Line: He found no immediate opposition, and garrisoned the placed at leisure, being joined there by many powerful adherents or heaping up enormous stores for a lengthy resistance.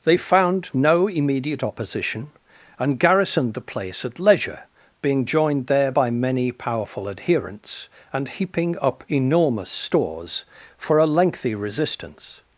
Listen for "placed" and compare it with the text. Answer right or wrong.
wrong